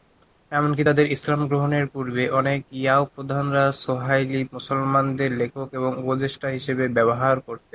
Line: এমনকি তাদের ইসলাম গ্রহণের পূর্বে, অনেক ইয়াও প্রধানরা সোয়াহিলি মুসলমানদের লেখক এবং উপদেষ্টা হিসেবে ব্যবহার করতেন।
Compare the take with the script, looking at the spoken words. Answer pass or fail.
pass